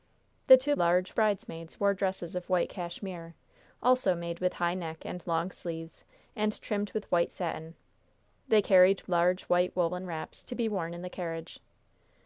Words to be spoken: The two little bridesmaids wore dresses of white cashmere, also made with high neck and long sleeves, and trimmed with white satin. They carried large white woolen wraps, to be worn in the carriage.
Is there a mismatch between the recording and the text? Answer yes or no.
yes